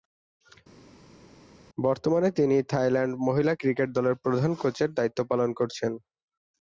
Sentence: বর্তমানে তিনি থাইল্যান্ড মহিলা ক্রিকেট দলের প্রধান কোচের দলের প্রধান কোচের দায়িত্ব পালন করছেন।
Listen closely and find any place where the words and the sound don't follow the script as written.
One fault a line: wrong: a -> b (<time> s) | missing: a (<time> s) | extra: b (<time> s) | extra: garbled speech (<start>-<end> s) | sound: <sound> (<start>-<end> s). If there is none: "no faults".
missing: দলের প্রধান কোচের (4.9 s)